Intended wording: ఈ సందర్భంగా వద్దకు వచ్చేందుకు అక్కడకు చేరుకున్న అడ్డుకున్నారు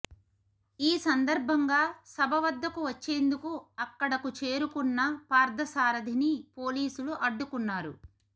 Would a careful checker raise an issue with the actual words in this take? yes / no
yes